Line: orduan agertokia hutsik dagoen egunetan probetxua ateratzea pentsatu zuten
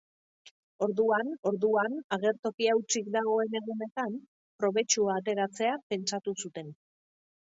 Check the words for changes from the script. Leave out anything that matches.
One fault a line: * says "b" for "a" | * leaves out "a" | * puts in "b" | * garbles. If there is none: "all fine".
* puts in "orduan"